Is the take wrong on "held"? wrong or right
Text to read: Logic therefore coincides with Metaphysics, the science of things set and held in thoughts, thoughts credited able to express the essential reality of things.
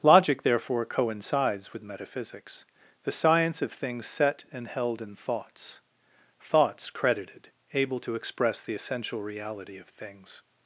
right